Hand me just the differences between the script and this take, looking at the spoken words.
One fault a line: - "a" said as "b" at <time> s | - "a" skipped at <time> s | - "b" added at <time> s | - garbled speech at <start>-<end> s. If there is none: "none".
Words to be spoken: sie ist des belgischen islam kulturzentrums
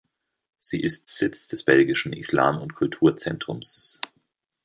- "sitz" added at 1.1 s
- "und" added at 2.6 s